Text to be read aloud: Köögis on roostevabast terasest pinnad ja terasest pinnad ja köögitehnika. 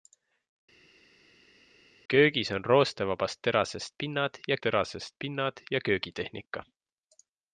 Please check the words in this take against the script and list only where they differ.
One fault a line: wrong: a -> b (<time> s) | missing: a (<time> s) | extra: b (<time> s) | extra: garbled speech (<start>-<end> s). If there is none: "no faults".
no faults